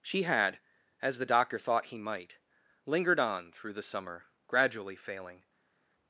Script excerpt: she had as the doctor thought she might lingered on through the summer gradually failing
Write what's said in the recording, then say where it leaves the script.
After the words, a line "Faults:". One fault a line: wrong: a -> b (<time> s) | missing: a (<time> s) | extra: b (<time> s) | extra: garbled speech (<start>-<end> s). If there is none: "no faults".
she had as the doctor thought he might lingered on through the summer gradually failing
Faults:
wrong: she -> he (1.9 s)